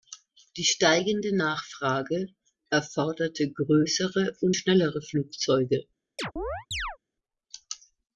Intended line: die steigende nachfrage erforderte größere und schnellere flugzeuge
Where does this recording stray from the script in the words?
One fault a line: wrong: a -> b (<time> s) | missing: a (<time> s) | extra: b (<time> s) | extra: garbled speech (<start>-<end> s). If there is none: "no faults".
no faults